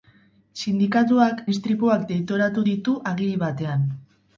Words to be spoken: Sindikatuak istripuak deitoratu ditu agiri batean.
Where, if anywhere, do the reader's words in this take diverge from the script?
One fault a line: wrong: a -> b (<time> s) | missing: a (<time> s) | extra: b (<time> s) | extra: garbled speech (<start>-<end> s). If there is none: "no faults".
no faults